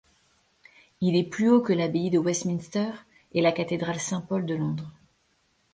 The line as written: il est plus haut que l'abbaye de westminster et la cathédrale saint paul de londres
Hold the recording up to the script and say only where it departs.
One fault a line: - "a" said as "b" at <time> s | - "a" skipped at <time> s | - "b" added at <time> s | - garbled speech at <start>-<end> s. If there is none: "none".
none